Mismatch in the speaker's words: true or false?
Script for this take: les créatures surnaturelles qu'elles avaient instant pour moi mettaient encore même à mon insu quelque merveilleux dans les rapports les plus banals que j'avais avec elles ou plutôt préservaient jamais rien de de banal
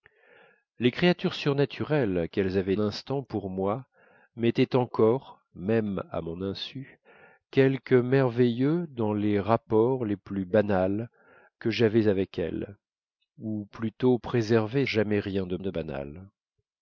false